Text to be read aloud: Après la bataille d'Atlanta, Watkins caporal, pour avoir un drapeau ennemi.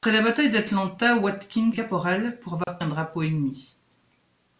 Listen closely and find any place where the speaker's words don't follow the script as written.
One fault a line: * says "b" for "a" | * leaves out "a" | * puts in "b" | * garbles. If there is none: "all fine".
all fine